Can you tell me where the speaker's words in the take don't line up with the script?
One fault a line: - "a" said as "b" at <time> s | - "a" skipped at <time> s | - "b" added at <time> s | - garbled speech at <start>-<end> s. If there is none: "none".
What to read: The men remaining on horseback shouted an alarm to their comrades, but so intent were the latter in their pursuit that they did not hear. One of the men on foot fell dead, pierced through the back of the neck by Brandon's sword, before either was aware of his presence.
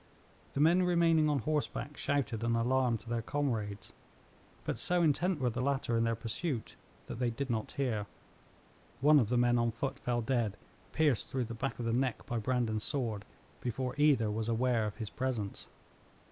none